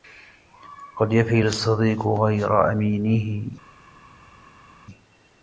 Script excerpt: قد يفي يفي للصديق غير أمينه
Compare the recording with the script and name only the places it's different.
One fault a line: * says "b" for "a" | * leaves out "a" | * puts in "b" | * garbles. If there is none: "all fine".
* leaves out "يفي"